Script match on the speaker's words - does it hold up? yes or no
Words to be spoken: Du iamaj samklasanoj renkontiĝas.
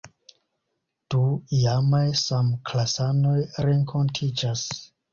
yes